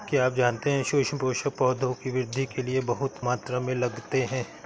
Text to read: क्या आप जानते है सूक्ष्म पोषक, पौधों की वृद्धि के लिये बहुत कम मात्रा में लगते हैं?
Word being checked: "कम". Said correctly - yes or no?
no